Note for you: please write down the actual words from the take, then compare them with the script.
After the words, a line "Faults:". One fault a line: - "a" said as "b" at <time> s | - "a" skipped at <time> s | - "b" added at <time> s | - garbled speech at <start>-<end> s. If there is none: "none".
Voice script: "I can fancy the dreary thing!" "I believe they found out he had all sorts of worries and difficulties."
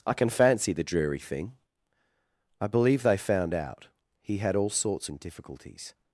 "I can fancy the dreary thing!" "I believe they found out he had all sorts and difficulties."
Faults:
- "of worries" skipped at 5.1 s